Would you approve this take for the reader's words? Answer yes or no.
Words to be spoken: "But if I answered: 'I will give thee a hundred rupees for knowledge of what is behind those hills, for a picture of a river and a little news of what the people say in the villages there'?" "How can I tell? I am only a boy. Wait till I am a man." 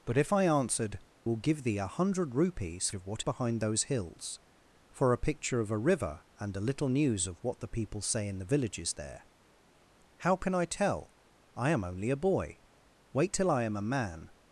no